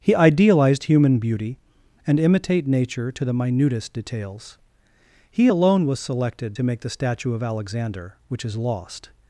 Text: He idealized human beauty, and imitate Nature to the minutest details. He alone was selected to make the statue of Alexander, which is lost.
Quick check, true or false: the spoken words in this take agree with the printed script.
true